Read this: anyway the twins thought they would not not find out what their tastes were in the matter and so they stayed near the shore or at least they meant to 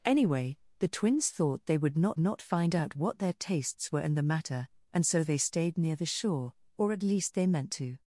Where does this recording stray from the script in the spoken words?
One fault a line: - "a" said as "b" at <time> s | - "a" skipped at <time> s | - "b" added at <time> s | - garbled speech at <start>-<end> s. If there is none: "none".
none